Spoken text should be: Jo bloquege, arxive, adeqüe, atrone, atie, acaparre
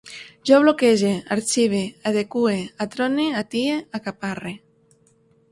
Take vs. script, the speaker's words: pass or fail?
pass